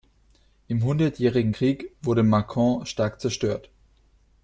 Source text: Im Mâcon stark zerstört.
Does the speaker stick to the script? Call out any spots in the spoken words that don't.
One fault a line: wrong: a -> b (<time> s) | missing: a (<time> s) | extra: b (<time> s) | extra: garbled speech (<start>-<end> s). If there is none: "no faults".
extra: Hundertjährigen Krieg wurde (0.8 s)